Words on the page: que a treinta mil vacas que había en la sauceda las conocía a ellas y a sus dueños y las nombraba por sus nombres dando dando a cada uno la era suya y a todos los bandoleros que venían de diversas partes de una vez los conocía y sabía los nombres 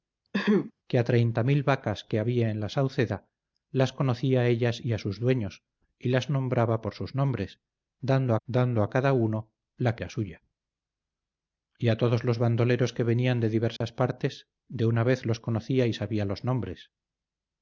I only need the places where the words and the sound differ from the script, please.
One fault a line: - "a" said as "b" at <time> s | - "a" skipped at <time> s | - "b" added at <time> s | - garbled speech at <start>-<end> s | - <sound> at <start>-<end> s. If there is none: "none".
- throat clearing at 0.3-0.7 s
- dropout at 13.8-13.8 s